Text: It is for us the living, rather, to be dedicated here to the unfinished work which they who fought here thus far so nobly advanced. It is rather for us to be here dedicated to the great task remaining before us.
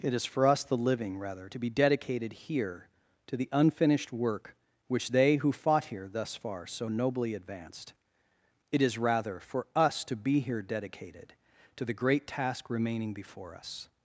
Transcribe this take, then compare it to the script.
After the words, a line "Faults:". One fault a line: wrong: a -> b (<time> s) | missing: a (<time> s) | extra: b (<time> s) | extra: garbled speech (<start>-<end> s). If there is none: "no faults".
It is for us the living, rather, to be dedicated here to the unfinished work which they who fought here thus far so nobly advanced. It is rather for us to be here dedicated to the great task remaining before us.
Faults:
no faults